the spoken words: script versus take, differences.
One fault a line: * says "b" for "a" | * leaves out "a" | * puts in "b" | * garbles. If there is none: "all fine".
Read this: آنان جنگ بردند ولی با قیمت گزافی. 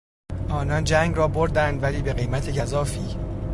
* puts in "را"
* says "به" for "با"